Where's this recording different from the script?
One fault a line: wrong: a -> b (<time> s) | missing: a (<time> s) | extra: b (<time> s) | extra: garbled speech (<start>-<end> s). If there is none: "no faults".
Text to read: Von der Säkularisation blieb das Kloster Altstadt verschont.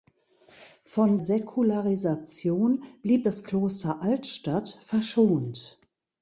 missing: der (1.2 s)